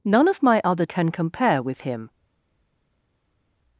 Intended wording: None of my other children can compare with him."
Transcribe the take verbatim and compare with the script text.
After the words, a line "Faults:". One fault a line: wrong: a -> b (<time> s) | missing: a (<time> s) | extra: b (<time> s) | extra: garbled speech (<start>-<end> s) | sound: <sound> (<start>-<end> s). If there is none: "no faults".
None of my other can compare with him."
Faults:
missing: children (0.9 s)